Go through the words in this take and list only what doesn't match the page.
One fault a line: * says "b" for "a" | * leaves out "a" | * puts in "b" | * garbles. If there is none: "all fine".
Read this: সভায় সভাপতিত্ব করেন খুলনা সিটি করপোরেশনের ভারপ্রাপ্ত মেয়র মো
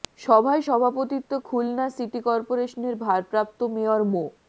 * leaves out "করেন"